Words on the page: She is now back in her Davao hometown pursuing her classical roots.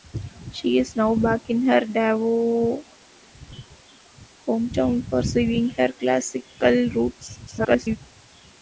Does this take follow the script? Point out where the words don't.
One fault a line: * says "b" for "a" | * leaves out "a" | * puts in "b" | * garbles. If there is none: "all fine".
* garbles